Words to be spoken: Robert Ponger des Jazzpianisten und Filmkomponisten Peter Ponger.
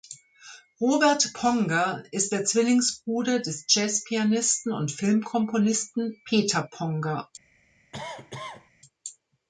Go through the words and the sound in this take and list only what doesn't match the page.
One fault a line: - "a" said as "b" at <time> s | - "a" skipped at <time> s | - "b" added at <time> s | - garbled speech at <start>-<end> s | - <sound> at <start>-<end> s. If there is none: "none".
- "ist der Zwillingsbruder" added at 2.1 s
- cough at 7.9-8.7 s